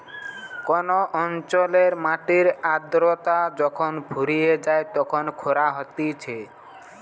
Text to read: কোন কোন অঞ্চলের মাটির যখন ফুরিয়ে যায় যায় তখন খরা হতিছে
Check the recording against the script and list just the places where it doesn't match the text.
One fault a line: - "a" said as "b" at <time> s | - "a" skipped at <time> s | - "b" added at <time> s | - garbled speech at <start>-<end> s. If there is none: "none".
- "কোন" skipped at 0.9 s
- "আদ্রতা" added at 2.7 s
- "যায়" skipped at 4.9 s